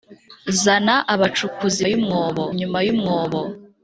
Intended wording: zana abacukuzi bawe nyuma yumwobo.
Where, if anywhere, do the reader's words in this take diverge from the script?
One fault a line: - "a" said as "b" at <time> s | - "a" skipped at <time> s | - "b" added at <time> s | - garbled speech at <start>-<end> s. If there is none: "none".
- "bawe" said as "yumwobo" at 1.9 s